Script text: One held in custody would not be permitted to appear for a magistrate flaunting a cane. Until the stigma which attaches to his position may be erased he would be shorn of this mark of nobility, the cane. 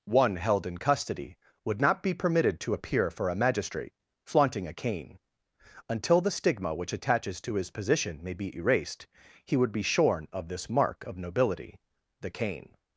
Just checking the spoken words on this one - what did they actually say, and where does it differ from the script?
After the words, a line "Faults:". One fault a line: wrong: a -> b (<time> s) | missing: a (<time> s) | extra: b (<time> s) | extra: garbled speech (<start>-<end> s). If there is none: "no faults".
One held in custody would not be permitted to appear for a magistrate flaunting a cane. Until the stigma which attaches to his position may be erased he would be shorn of this mark of nobility, the cane.
Faults:
no faults